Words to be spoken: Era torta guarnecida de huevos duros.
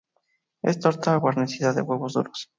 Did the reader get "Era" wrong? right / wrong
wrong